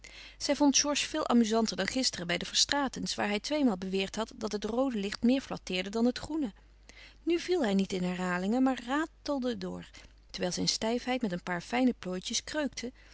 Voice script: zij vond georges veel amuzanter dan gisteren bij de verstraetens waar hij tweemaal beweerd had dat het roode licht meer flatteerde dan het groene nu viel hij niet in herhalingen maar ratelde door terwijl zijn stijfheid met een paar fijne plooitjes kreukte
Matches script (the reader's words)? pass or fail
pass